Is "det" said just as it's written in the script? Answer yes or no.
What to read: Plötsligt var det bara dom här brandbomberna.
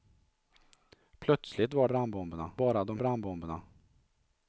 no